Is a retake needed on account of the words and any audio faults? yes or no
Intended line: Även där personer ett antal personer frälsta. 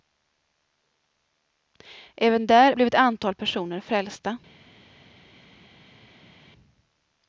yes